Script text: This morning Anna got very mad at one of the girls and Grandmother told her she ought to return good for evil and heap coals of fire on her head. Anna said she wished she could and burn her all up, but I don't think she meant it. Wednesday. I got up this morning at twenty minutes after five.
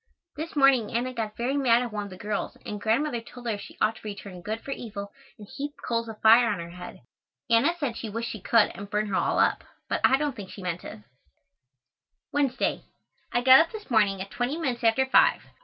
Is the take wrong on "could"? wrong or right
right